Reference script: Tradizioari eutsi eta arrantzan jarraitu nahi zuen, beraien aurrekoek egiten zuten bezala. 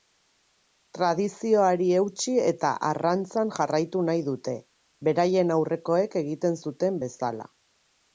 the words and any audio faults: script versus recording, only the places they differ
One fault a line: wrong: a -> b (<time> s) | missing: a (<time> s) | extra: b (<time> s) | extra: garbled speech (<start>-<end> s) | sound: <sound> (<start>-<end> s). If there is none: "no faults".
wrong: zuen -> dute (4.3 s)